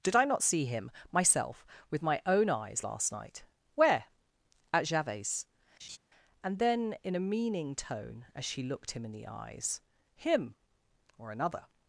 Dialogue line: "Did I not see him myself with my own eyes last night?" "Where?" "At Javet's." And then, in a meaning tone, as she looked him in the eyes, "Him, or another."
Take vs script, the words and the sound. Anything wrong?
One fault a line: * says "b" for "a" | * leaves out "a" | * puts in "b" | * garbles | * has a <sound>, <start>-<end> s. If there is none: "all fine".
* has a laugh, 5.8-6.0 s